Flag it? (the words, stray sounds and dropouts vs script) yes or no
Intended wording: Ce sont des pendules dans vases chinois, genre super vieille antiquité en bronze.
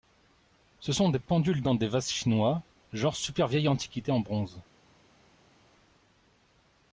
yes